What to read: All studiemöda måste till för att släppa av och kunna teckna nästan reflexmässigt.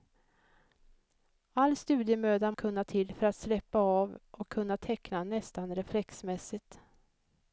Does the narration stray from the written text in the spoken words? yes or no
yes